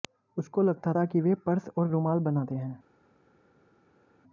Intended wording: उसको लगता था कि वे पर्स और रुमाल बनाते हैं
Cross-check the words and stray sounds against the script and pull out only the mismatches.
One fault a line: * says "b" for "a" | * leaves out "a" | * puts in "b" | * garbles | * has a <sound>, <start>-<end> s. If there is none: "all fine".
all fine